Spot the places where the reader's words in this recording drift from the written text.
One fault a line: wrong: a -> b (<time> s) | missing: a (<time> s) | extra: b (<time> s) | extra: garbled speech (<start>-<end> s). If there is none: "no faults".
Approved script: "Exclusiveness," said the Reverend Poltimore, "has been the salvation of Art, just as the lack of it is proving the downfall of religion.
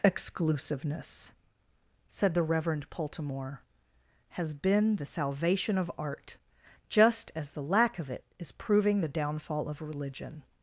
no faults